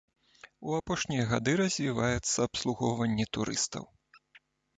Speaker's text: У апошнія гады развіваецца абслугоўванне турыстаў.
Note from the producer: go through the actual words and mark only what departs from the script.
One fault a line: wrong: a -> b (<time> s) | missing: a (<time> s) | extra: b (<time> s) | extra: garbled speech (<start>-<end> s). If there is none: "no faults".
no faults